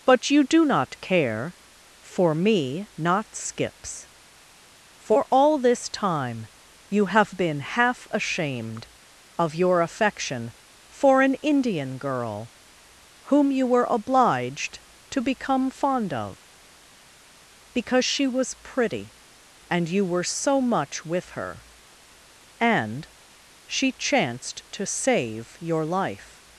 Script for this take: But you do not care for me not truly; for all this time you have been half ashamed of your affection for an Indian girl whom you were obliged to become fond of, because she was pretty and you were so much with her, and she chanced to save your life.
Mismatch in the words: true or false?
true